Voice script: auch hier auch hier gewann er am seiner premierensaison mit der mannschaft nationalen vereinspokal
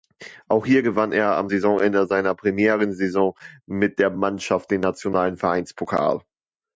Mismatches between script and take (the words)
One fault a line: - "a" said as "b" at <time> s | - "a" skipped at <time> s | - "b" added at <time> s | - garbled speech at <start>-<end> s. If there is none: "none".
- "auch hier" skipped at 0.8 s
- "saisonende" added at 1.5 s
- "den" added at 4.7 s